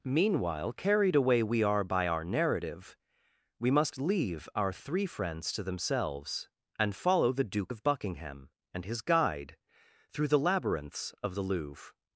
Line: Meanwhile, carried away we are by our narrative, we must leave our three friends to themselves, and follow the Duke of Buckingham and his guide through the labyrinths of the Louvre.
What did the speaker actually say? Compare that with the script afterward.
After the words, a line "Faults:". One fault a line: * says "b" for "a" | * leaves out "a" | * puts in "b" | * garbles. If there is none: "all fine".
Meanwhile, carried away we are by our narrative, we must leave our three friends to themselves, and follow the Duke of Buckingham and his guide through the labyrinths of the Louvre.
Faults:
all fine